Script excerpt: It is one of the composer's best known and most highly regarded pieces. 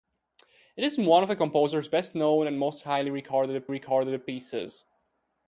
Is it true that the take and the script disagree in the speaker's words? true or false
true